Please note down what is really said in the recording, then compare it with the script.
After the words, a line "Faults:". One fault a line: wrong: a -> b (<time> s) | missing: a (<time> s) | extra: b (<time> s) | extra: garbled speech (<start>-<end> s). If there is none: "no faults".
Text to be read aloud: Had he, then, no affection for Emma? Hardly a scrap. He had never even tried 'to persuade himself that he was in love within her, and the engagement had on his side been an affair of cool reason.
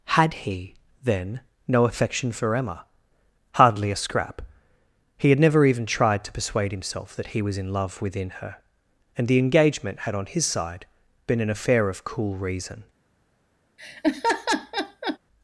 Had he, then, no affection for Emma? Hardly a scrap. He had never even tried 'to persuade himself that he was in love within her, and the engagement had on his side been an affair of cool reason.
Faults:
no faults